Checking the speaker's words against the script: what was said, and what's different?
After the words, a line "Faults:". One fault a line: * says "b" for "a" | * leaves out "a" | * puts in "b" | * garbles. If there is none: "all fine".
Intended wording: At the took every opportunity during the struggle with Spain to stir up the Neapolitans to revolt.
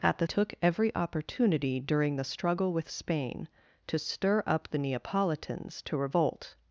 At the took every opportunity during the struggle with Spain to stir up the Neapolitans to revolt.
Faults:
all fine